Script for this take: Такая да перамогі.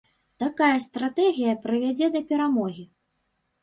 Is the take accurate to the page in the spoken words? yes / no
no